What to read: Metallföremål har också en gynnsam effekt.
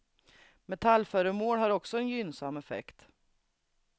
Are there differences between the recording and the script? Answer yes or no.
no